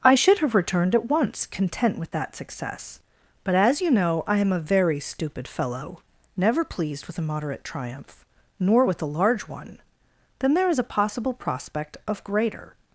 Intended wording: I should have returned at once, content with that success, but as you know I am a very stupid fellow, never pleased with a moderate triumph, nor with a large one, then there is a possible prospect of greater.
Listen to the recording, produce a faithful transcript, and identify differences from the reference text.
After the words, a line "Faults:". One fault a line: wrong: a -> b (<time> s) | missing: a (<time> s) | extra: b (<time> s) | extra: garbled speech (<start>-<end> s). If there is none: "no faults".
I should have returned at once, content with that success, but as you know I am a very stupid fellow, never pleased with a moderate triumph, nor with a large one, then there is a possible prospect of greater.
Faults:
no faults